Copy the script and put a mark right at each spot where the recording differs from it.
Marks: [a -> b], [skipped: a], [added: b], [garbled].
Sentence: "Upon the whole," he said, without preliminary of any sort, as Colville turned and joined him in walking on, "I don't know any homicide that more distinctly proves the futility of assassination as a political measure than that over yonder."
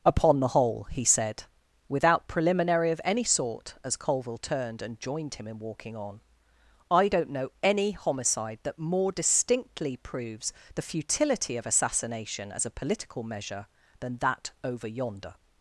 "Upon the whole," he said, without preliminary of any sort, as Colville turned and joined him in walking on, "I don't know any homicide that more distinctly proves the futility of assassination as a political measure than that over yonder."